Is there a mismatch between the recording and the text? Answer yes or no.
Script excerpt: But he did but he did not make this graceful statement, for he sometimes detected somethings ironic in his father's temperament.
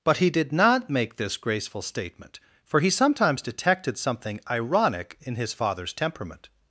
yes